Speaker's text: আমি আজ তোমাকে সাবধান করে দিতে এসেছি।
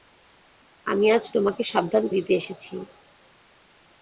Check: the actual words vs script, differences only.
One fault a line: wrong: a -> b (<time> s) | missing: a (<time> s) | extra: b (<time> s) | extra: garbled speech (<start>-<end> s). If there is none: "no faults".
missing: করে (2.0 s)